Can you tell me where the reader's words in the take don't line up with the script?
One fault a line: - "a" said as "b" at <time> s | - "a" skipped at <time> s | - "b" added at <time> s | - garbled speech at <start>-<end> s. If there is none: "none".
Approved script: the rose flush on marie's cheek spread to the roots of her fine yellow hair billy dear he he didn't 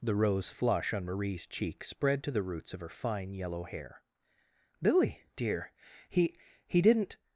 none